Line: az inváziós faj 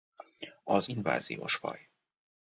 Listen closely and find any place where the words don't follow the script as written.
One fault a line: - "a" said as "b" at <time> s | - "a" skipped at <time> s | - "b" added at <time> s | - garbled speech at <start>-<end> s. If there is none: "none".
none